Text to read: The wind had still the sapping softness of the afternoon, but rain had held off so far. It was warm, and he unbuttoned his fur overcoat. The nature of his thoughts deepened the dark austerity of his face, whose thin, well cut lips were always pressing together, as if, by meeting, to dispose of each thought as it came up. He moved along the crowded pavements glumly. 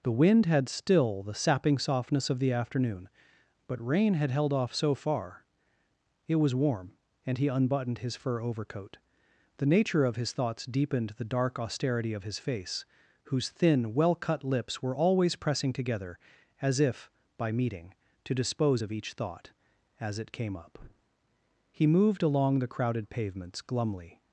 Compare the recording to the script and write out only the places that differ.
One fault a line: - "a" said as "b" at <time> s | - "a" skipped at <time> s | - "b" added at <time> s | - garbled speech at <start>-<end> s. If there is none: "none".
none